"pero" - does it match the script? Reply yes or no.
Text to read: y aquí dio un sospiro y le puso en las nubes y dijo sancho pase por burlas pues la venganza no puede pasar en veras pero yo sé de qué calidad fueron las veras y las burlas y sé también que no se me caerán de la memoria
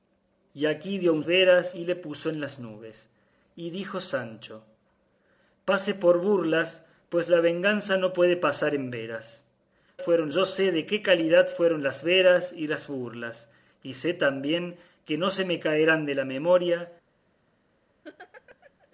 no